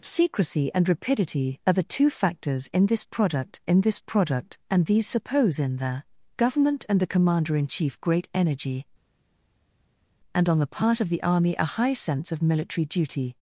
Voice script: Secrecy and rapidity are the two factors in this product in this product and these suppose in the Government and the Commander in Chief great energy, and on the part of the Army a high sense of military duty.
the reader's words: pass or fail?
pass